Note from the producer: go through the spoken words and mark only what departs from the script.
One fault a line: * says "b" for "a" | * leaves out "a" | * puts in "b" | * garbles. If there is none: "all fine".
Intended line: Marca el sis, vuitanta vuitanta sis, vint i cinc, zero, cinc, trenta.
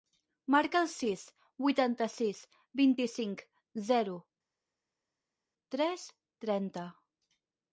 * leaves out "vuitanta"
* says "tres" for "cinc"